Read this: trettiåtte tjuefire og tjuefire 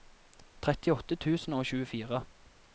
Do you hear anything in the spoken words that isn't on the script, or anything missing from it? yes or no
yes